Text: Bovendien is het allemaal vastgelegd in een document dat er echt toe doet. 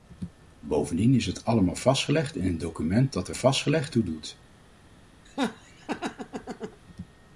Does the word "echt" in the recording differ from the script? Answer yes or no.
yes